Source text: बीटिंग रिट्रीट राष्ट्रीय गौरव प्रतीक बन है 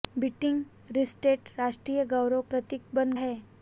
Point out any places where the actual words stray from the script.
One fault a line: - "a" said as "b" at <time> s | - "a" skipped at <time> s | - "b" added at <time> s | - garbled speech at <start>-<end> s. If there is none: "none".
none